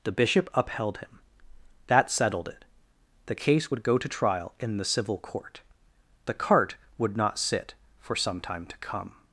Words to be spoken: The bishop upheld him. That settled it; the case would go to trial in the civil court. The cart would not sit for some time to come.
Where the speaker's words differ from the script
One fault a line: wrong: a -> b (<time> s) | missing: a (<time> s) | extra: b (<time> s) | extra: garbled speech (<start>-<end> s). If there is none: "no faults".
no faults